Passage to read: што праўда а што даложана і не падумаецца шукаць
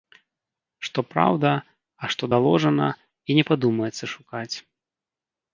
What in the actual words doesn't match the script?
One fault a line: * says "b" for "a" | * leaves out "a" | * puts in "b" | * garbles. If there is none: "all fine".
all fine